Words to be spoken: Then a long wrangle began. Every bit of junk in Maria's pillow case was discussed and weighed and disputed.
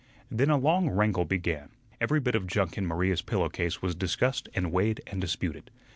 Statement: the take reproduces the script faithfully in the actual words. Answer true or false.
true